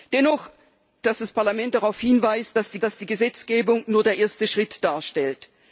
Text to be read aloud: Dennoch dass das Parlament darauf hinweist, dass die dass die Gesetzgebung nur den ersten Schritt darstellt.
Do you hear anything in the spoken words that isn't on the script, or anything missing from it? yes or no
no